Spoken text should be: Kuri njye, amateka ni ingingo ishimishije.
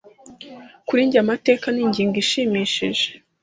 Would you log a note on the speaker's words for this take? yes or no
no